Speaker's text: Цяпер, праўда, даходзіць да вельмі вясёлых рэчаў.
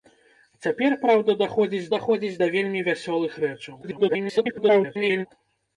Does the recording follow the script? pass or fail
fail